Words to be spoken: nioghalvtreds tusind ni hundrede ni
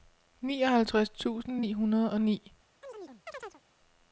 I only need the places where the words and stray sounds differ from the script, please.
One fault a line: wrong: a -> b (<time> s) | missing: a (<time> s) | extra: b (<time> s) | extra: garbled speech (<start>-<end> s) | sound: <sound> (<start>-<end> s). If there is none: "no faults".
extra: og (2.1 s)
sound: chirp (2.8-3.6 s)